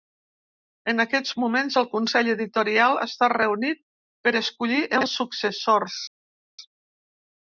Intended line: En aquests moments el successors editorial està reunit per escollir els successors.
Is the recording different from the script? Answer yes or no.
yes